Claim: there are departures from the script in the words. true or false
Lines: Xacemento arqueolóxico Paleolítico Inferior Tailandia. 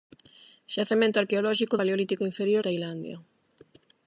false